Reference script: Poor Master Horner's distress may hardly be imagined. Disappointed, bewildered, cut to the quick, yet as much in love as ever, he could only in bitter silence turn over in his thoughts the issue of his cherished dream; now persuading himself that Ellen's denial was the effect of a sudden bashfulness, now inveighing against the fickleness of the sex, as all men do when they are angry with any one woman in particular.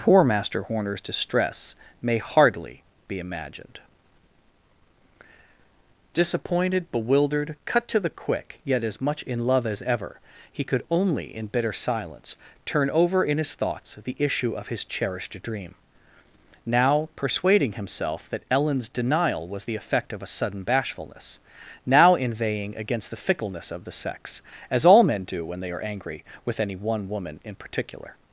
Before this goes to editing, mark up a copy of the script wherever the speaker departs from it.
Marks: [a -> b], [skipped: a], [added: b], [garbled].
Poor Master Horner's distress may hardly be imagined. Disappointed, bewildered, cut to the quick, yet as much in love as ever, he could only in bitter silence turn over in his thoughts the issue of his cherished dream; now persuading himself that Ellen's denial was the effect of a sudden bashfulness, now inveighing against the fickleness of the sex, as all men do when they are angry with any one woman in particular.